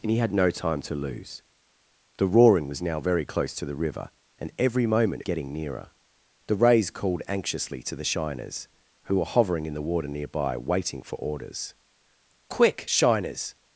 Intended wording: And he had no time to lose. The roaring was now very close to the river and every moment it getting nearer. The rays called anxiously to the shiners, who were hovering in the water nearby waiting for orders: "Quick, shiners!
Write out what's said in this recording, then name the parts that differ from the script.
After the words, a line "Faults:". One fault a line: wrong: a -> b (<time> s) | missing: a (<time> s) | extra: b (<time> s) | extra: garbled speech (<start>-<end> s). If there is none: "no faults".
And he had no time to lose. The roaring was now very close to the river and every moment it getting nearer. The rays called anxiously to the shiners, who were hovering in the water nearby waiting for orders: "Quick, shiners!
Faults:
no faults